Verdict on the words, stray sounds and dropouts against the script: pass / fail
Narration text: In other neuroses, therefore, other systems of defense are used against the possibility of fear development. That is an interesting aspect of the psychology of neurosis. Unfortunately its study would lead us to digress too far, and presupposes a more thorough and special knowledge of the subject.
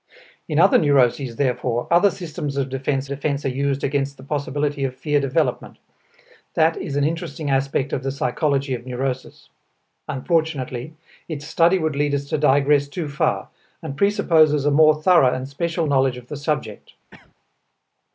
fail